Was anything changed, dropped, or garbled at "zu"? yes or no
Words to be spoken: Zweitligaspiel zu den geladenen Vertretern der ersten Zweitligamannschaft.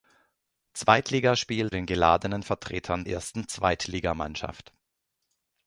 yes